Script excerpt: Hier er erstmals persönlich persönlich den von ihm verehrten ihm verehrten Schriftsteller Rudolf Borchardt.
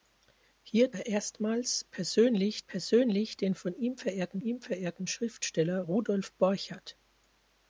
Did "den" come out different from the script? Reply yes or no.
no